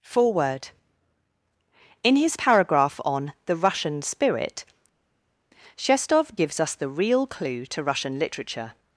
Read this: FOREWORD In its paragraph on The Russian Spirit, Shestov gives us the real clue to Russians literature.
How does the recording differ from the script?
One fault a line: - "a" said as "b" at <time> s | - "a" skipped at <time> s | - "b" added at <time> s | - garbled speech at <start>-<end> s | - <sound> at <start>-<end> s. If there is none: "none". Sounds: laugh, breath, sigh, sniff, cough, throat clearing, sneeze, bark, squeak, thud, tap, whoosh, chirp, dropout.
- "its" said as "his" at 2.1 s
- "Russians" said as "Russian" at 7.8 s